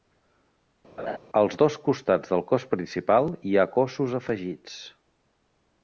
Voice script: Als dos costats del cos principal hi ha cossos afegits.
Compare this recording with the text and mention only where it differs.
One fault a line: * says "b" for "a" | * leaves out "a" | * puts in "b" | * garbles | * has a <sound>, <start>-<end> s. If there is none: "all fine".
* has a laugh, 1.0-1.2 s